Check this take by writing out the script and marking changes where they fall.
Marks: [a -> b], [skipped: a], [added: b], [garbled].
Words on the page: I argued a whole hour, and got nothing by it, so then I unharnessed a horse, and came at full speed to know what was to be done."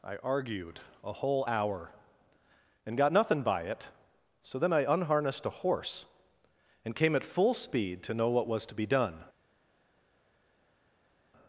I argued a whole hour, and got nothing by it, so then I unharnessed a horse, and came at full speed to know what was to be done."